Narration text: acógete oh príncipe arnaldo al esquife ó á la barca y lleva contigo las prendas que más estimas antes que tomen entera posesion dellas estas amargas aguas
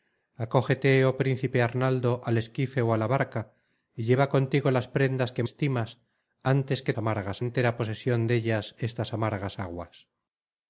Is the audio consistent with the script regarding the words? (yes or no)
no